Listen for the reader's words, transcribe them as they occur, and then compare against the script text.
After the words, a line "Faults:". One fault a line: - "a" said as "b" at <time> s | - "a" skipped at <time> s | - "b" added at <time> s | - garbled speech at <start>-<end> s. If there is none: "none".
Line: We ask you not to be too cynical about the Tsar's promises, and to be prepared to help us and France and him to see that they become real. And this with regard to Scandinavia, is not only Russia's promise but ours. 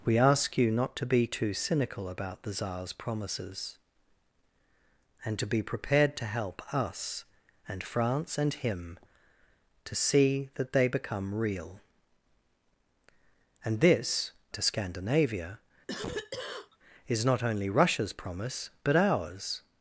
We ask you not to be too cynical about the Tsar's promises, and to be prepared to help us and France and him to see that they become real. And this to Scandinavia, is not only Russia's promise but ours.
Faults:
- "with regard" skipped at 14.3 s